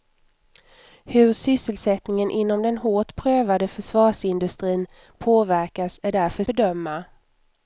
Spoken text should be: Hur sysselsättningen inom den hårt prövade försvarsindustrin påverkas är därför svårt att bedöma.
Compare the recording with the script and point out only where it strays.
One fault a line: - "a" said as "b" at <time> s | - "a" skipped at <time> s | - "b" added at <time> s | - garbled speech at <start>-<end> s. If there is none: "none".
- "svårt att" skipped at 6.4 s